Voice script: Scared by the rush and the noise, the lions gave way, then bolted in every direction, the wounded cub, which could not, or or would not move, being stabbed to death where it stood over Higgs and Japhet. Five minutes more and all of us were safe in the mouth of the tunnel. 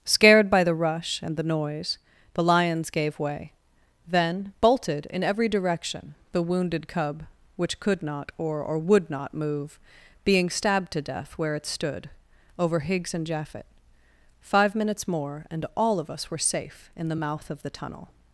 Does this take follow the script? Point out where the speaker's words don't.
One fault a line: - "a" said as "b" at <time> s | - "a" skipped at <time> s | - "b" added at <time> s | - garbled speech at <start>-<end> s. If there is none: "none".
none